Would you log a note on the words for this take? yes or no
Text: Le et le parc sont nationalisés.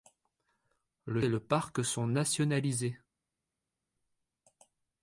no